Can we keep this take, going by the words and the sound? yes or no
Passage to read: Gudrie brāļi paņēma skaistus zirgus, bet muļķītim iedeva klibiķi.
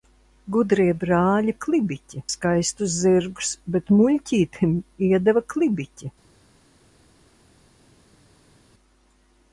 no